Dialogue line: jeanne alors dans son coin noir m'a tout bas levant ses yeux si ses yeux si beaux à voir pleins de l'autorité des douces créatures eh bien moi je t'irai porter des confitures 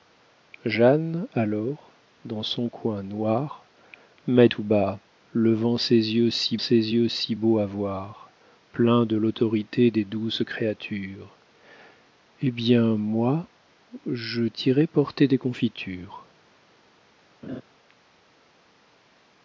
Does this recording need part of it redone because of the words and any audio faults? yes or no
yes